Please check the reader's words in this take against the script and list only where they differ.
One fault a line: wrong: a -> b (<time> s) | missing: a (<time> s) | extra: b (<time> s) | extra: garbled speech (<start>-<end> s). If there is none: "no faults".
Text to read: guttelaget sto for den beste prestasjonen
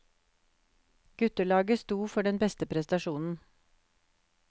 no faults